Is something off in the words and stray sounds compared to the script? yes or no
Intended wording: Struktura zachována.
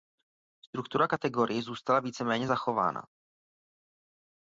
yes